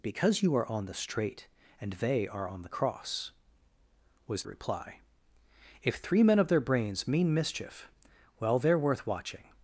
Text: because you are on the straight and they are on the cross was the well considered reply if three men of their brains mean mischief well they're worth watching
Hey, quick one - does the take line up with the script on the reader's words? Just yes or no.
no